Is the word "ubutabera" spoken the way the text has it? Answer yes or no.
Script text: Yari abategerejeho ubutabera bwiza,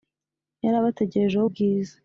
no